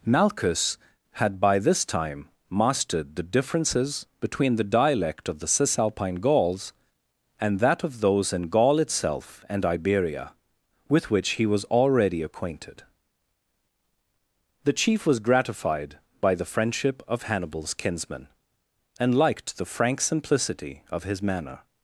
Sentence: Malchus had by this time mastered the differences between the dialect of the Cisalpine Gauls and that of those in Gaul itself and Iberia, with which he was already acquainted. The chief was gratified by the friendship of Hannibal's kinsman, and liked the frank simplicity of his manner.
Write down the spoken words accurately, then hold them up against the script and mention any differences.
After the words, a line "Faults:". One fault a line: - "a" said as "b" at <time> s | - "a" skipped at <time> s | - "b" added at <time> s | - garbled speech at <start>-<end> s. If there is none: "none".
Malchus had by this time mastered the differences between the dialect of the Cisalpine Gauls and that of those in Gaul itself and Iberia, with which he was already acquainted. The chief was gratified by the friendship of Hannibal's kinsman, and liked the frank simplicity of his manner.
Faults:
none